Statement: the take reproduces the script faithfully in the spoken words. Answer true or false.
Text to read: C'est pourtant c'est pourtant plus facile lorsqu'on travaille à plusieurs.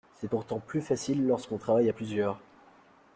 false